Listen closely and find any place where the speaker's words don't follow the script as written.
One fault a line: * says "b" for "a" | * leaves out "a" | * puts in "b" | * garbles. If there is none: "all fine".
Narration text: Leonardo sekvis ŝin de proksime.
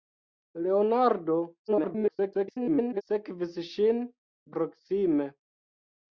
* garbles
* leaves out "de"